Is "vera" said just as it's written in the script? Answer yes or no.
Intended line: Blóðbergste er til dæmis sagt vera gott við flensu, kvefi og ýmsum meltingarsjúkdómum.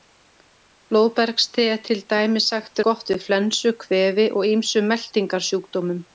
no